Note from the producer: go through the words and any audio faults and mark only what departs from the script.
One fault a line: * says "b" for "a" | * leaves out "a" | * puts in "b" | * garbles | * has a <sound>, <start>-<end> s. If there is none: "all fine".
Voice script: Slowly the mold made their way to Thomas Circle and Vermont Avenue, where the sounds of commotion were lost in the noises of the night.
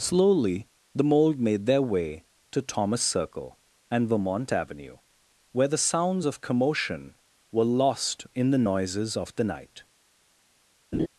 * has a laugh, 10.9-11.1 s